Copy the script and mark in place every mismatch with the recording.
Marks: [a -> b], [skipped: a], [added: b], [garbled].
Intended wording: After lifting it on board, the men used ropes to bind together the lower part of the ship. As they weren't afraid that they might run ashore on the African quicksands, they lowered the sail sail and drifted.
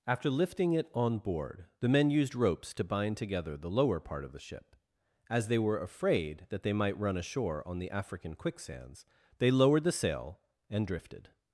After lifting it on board, the men used ropes to bind together the lower part of the ship. As they [weren't -> were] afraid that they might run ashore on the African quicksands, they lowered the sail [skipped: sail] and drifted.